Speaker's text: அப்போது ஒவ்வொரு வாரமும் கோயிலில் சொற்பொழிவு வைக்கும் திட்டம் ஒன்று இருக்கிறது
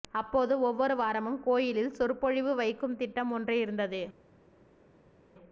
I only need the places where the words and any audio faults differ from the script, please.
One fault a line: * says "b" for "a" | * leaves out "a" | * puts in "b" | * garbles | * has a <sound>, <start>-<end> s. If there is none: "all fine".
* says "இருந்தது" for "இருக்கிறது"